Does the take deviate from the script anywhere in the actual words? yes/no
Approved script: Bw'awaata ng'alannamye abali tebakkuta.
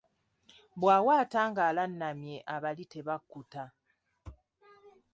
no